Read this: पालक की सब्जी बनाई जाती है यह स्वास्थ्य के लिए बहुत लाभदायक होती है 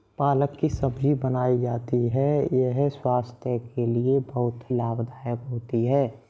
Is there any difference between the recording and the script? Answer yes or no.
no